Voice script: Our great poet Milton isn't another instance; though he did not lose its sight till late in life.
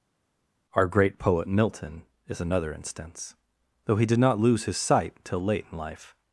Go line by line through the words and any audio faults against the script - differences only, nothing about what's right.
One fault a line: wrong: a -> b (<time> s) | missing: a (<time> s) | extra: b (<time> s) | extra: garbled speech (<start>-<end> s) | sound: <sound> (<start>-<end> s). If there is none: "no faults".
wrong: isn't -> is (2.3 s)
wrong: its -> his (4.6 s)